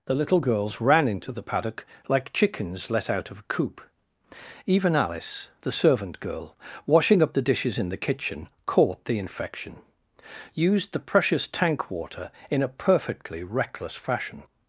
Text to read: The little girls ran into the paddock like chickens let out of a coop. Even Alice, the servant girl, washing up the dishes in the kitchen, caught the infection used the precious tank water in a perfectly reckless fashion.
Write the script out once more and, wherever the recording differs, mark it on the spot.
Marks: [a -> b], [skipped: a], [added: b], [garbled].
The little girls ran into the paddock like chickens let out of a coop. Even Alice, the servant girl, washing up the dishes in the kitchen, caught the infection used the precious tank water in a perfectly reckless fashion.